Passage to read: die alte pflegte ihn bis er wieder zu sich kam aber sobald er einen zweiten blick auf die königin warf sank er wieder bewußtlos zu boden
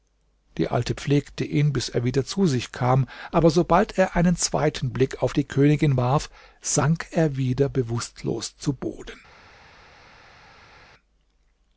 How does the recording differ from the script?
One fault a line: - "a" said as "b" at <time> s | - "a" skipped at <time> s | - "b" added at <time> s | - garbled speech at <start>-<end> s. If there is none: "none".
none